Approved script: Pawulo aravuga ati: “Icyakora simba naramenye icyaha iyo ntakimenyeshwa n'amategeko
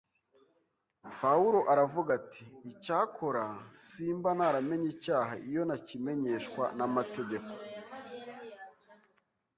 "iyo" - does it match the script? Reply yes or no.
yes